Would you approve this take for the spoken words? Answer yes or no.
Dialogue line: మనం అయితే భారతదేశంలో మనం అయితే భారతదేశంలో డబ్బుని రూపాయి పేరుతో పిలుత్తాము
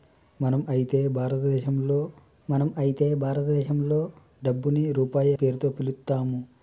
yes